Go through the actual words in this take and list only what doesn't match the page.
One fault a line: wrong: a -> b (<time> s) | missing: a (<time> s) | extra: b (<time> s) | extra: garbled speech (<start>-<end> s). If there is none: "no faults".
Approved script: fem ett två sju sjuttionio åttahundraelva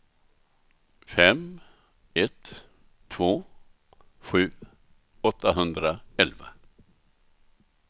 missing: sjuttionio (4.5 s)